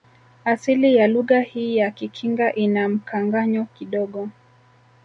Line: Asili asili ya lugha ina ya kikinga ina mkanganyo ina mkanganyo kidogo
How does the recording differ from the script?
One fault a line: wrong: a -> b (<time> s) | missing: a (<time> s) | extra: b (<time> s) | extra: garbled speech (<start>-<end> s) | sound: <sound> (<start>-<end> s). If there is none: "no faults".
missing: asili (0.9 s)
wrong: ina -> hii (1.4 s)
missing: ina mkanganyo (3.6 s)